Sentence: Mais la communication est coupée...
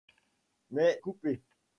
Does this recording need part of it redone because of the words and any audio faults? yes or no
yes